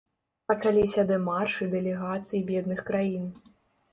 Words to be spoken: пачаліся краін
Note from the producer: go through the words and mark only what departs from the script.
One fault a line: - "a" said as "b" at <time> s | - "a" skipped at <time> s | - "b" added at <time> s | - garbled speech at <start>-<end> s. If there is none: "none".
- "дэмаршы дэлегацый бедных" added at 1.1 s